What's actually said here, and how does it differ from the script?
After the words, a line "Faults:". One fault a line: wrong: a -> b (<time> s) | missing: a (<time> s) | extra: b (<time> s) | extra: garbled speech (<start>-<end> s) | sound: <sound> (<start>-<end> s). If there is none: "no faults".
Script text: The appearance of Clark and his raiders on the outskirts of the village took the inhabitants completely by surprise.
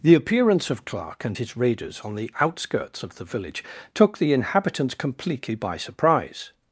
The appearance of Clark and his raiders on the outskirts of the village took the inhabitants completely by surprise.
Faults:
no faults